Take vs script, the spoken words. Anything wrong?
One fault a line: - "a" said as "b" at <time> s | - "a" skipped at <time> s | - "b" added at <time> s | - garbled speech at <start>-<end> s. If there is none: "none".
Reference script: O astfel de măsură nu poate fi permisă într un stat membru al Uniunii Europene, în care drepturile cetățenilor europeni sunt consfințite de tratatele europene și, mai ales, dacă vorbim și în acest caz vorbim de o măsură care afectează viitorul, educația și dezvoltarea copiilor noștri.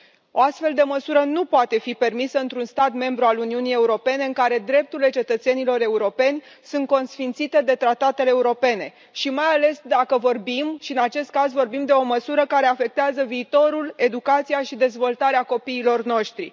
none